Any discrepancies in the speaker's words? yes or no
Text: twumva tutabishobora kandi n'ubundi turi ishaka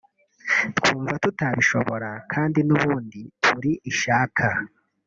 no